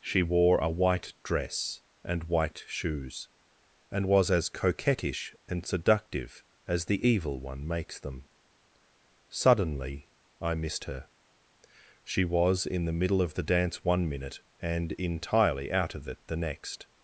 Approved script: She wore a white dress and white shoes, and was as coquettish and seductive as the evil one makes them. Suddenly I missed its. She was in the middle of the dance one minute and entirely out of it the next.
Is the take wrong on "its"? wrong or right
wrong